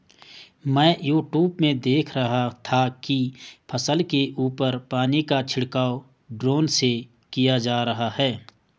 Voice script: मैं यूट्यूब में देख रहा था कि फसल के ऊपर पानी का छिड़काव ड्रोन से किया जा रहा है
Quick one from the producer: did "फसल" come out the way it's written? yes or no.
yes